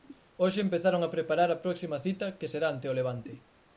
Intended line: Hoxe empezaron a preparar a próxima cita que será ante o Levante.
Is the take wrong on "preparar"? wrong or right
right